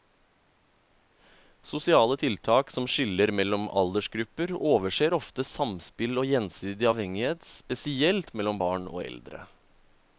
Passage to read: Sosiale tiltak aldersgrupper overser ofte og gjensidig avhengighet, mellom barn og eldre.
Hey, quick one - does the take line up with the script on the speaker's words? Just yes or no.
no